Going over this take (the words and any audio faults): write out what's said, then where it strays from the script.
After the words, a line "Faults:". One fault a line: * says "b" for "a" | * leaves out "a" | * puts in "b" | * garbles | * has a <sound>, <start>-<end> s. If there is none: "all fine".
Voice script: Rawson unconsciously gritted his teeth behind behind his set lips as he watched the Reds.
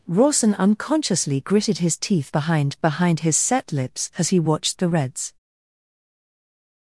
Rawson unconsciously gritted his teeth behind behind his set lips as he watched the Reds.
Faults:
all fine